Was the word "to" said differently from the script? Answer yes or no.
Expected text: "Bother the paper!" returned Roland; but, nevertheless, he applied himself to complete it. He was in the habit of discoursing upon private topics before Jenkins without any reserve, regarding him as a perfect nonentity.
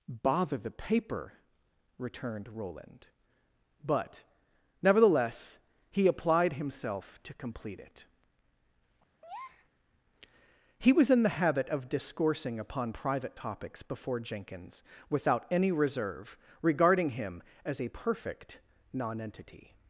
no